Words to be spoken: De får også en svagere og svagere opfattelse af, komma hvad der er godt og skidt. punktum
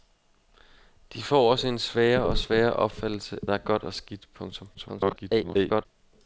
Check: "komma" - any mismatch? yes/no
yes